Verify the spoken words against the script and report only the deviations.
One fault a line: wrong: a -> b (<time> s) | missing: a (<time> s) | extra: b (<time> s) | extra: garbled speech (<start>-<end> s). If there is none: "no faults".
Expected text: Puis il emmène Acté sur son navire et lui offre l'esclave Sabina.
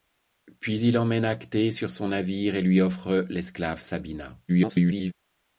extra: garbled speech (4.5-5.1 s)